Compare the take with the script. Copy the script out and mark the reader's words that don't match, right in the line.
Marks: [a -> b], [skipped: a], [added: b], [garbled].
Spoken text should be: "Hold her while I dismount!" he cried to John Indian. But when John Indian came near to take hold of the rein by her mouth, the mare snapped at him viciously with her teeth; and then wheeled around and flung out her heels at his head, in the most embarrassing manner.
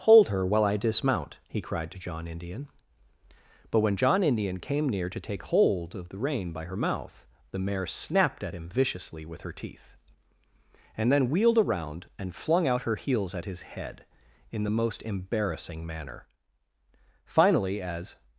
"Hold her while I dismount!" he cried to John Indian. But when John Indian came near to take hold of the rein by her mouth, the mare snapped at him viciously with her teeth; and then wheeled around and flung out her heels at his head, in the most embarrassing manner. [added: Finally as]